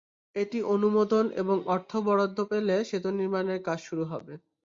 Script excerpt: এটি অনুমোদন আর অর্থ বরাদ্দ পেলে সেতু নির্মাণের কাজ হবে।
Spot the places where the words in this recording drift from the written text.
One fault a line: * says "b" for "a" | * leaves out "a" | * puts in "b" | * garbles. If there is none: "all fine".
* says "এবং" for "আর"
* puts in "শুরু"